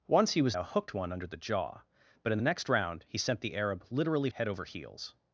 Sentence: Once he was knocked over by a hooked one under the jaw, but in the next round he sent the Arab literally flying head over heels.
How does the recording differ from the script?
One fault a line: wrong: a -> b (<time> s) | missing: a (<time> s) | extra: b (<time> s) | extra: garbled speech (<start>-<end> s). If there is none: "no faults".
missing: knocked over by (0.6 s)
missing: flying (4.3 s)